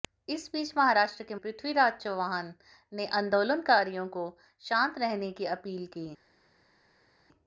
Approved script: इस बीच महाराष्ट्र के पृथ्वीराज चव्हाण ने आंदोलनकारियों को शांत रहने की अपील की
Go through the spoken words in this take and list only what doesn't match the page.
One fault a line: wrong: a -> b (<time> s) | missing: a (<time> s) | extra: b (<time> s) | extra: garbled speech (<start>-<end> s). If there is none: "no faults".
no faults